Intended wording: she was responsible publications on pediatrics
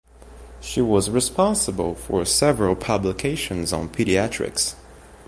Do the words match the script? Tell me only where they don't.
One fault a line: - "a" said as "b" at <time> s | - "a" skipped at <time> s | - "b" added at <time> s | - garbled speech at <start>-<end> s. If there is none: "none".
- "for several" added at 1.9 s